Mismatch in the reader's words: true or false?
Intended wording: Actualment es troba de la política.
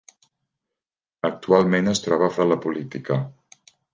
false